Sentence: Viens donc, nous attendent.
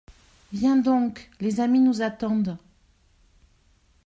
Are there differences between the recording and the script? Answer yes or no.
yes